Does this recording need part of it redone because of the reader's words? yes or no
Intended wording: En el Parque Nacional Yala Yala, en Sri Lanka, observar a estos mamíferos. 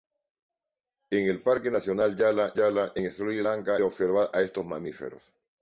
no